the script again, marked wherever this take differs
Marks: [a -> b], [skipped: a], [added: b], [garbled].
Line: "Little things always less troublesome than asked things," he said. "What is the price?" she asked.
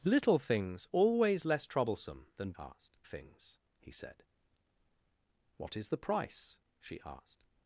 "Little things always less troublesome than asked things," he said. "What is the price?" she asked.